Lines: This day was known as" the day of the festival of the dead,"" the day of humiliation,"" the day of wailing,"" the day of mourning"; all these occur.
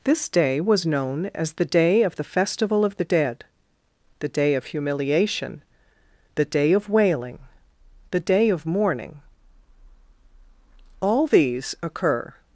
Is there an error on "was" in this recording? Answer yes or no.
no